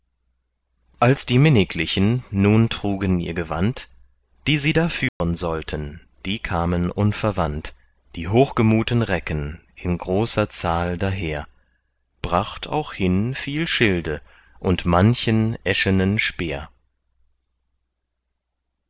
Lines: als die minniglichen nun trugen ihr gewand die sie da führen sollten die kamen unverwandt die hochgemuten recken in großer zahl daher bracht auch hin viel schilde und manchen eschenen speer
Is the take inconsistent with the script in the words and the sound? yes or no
yes